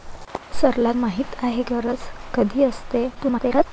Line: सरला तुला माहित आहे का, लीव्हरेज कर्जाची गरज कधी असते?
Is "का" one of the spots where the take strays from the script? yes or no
yes